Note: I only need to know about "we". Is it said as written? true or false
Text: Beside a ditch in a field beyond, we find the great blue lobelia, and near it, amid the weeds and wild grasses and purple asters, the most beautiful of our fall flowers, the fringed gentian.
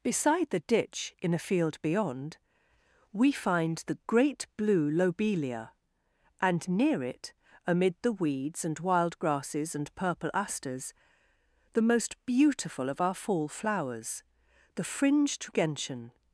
true